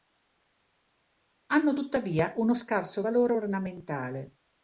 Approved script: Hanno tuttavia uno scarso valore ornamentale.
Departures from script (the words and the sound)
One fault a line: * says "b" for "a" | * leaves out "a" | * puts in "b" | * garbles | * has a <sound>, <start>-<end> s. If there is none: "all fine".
all fine